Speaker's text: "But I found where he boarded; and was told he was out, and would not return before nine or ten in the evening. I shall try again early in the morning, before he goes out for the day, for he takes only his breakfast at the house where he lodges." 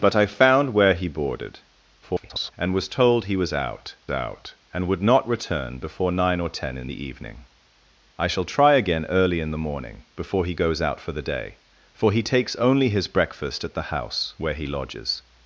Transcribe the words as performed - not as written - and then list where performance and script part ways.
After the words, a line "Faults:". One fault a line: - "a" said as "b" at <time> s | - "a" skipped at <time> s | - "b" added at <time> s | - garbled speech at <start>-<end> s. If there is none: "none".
"But I found where he boarded; [garbled] and was told he was out out, and would not return before nine or ten in the evening. I shall try again early in the morning, before he goes out for the day, for he takes only his breakfast at the house where he lodges."
Faults:
- garbled speech at 2.0-2.5 s
- "out" added at 4.1 s